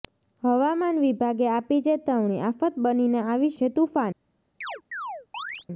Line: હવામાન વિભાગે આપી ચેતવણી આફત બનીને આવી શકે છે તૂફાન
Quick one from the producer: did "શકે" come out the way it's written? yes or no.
no